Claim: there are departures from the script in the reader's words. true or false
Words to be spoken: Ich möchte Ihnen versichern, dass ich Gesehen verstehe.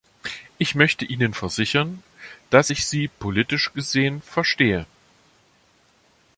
true